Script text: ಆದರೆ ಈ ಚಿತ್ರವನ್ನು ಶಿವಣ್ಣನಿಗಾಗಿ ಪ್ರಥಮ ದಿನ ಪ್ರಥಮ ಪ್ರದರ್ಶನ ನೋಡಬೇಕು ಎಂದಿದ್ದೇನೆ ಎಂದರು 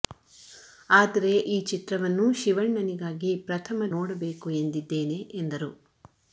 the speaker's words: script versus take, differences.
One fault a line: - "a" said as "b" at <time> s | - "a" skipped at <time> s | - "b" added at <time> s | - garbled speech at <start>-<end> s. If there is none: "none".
- "ದಿನ ಪ್ರಥಮ ಪ್ರದರ್ಶನ" skipped at 3.9 s